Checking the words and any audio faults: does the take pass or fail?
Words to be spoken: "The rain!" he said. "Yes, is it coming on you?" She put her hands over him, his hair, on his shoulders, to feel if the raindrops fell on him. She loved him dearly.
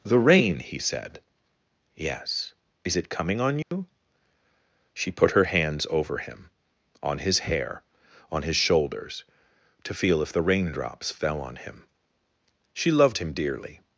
fail